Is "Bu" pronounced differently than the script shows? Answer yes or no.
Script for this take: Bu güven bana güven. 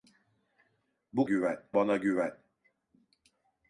no